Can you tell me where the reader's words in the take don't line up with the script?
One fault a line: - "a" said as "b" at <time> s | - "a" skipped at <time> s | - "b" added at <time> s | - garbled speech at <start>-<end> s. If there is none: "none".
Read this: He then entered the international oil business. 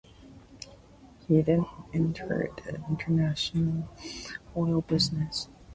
none